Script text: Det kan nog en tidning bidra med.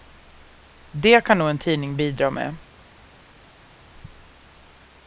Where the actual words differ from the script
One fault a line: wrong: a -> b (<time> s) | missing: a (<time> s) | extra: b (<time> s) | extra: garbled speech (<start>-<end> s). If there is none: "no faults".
no faults